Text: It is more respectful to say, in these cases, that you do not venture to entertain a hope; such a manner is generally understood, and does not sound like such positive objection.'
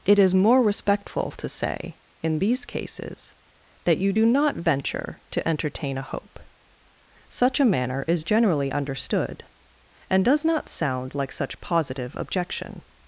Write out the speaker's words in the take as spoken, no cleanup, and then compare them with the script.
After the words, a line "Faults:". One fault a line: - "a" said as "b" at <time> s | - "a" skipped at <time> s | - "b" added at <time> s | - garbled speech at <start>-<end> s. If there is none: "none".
It is more respectful to say, in these cases, that you do not venture to entertain a hope; such a manner is generally understood, and does not sound like such positive objection.'
Faults:
none